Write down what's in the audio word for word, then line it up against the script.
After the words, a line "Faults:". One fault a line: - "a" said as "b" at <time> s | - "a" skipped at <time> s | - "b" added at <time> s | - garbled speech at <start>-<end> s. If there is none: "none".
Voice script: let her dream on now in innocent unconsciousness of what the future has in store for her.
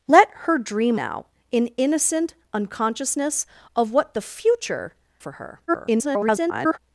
let her dream now in innocent unconsciousness of what the future for her. [garbled]
Faults:
- "on" skipped at 1.0 s
- "has in store" skipped at 4.9 s
- garbled speech at 5.7-6.8 s